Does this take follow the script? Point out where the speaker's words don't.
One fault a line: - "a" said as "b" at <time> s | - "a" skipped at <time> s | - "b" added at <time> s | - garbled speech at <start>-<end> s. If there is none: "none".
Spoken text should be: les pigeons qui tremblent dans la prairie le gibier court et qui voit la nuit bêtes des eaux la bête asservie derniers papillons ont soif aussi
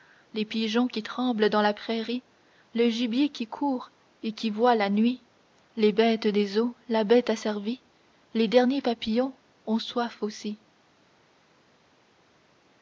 - "qui" added at 3.3 s
- "les" added at 5.7 s
- "les" added at 8.3 s